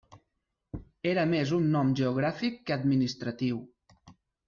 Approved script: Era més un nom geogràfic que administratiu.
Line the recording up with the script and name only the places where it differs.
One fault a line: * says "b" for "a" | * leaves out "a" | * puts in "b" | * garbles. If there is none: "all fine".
all fine